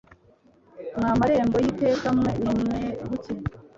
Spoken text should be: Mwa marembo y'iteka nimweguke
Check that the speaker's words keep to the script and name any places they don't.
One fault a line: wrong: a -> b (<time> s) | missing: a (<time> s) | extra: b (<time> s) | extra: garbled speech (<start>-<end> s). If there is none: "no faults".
extra: mwe (2.2 s)